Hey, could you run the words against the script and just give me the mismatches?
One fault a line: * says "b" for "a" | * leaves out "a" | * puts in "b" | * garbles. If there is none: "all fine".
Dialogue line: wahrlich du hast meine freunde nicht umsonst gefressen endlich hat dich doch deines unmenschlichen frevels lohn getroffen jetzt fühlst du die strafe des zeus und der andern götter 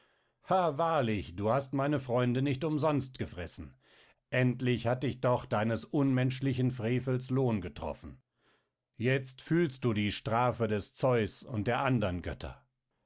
all fine